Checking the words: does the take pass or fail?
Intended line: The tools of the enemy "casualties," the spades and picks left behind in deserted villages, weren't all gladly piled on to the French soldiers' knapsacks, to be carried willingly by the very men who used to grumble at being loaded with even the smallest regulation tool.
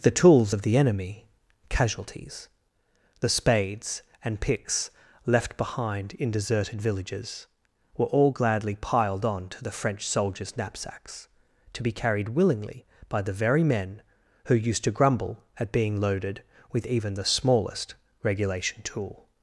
fail